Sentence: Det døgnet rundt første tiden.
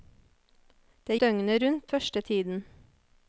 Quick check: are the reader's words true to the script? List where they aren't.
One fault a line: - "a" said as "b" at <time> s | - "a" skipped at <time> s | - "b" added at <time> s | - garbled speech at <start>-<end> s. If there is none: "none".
none